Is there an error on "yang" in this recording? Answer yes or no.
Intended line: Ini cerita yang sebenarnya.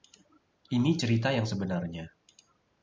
no